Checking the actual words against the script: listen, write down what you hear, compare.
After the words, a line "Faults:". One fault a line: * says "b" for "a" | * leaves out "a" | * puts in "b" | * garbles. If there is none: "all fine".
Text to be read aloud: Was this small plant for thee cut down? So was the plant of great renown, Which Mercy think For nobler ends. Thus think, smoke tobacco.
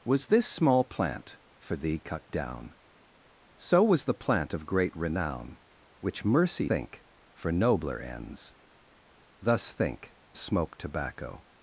Was this small plant for thee cut down? So was the plant of great renown, Which Mercy think For nobler ends. Thus think, smoke tobacco.
Faults:
all fine